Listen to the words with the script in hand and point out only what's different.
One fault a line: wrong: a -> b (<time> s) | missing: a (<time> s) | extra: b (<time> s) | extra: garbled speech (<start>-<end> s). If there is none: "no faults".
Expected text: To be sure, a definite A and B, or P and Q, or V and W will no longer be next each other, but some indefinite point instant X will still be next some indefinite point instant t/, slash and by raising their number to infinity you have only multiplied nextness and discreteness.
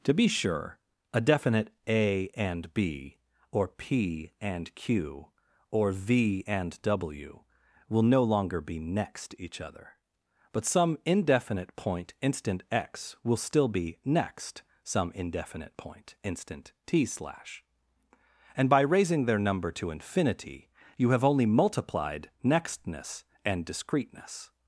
no faults